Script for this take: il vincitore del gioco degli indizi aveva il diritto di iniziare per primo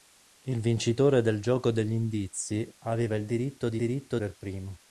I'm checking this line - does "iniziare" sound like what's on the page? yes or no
no